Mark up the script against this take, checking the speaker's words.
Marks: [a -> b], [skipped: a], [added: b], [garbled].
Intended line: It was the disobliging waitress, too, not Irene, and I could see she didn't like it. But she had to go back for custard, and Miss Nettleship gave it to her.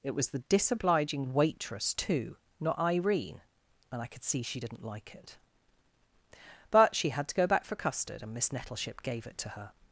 It was the disobliging waitress, too, not Irene, and I could see she didn't like it. But she had to go back for custard, and Miss Nettleship gave it to her.